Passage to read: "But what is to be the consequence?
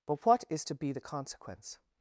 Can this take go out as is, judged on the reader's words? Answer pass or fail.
pass